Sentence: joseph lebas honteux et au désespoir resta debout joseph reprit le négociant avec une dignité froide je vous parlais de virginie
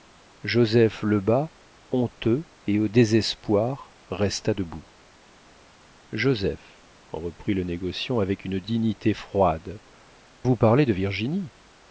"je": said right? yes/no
no